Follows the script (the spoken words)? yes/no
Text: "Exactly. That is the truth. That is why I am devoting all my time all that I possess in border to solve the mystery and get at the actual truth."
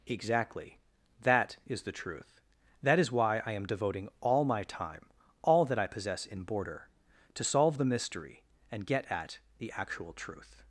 yes